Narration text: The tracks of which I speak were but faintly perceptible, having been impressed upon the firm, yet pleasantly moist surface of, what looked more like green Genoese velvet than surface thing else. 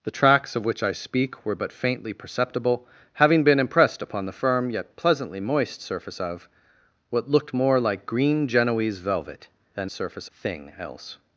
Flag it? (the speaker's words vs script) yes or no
no